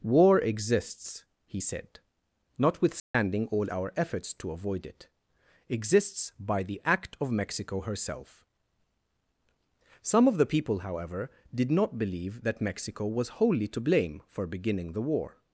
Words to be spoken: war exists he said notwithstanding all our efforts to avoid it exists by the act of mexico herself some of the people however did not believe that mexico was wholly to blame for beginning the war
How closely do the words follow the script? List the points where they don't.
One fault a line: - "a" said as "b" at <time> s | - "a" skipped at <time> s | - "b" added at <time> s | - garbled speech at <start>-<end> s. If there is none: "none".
none